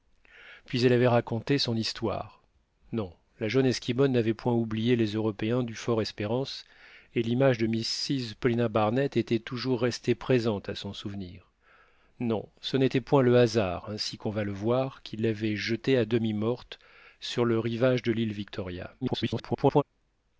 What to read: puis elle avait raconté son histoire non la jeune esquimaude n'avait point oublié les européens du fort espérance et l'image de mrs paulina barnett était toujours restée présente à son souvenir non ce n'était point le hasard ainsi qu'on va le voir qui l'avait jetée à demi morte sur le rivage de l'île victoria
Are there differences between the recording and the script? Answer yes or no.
yes